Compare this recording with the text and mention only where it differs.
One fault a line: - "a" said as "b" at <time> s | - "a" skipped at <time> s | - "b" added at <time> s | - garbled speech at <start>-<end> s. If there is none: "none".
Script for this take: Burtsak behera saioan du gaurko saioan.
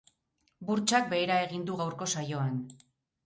- "saioan" said as "egin" at 1.5 s